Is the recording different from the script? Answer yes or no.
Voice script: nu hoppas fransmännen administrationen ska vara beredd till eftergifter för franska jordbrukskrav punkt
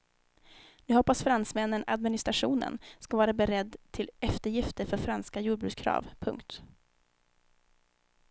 no